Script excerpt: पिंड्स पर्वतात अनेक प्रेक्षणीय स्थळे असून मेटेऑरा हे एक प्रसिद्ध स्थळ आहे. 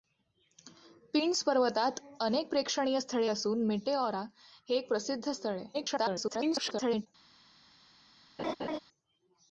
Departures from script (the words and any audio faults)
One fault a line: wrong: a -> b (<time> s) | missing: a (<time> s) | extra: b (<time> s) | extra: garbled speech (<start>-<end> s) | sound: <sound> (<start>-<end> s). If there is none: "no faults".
extra: garbled speech (5.7-7.1 s)
sound: laugh (8.4-8.8 s)